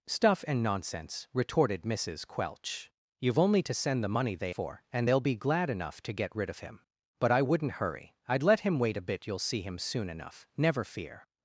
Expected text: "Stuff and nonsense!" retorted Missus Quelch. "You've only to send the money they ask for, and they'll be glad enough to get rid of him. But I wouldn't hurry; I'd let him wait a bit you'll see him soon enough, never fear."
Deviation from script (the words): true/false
true